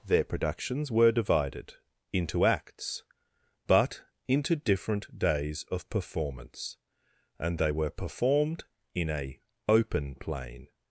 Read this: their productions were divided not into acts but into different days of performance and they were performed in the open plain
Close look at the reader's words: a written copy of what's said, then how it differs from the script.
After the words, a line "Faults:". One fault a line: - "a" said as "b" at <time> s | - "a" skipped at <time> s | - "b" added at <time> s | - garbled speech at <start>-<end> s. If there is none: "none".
their productions were divided into acts but into different days of performance and they were performed in a open plain
Faults:
- "not" skipped at 1.8 s
- "the" said as "a" at 9.1 s